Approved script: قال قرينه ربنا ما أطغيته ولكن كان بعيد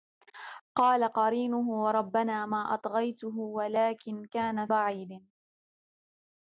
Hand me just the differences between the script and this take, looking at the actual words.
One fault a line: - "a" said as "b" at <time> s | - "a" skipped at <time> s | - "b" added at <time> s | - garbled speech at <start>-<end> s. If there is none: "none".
none